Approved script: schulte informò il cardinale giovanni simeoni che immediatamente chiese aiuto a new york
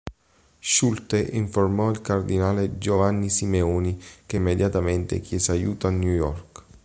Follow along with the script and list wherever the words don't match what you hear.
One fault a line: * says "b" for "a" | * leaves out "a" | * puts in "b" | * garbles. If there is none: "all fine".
all fine